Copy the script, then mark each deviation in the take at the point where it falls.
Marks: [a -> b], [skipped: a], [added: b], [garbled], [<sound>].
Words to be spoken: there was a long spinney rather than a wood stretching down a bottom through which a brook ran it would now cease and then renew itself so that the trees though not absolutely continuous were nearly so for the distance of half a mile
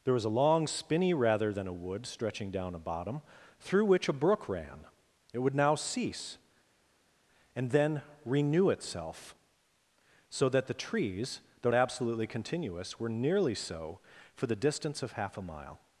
there was a long spinney rather than a wood stretching down a bottom through which a brook ran it would now cease and then renew itself so that the trees though [skipped: not] absolutely continuous were nearly so for the distance of half a mile